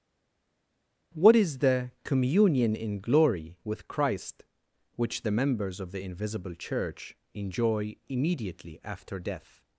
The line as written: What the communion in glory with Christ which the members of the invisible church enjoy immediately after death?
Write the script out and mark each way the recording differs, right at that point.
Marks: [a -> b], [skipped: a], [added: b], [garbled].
What [added: is] the communion in glory with Christ which the members of the invisible church enjoy immediately after death?